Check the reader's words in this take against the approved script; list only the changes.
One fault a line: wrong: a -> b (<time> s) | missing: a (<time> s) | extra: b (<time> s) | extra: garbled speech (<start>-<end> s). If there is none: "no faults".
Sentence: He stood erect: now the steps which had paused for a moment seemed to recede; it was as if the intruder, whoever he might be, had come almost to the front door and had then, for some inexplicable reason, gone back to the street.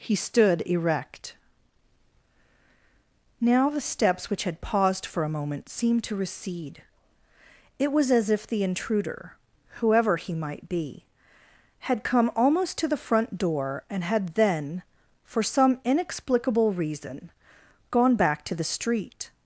no faults